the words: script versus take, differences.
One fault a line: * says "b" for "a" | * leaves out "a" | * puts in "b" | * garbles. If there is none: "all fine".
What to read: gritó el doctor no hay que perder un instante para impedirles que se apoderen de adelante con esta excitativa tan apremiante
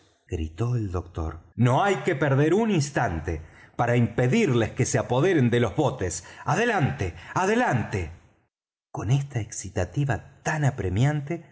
* puts in "los botes adelante"